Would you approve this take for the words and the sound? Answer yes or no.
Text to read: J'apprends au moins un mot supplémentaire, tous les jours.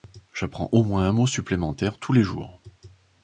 yes